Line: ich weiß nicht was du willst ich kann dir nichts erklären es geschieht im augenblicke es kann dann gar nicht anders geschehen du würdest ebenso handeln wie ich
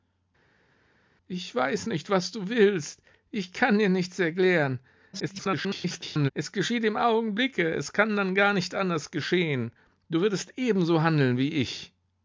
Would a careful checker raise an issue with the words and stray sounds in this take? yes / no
yes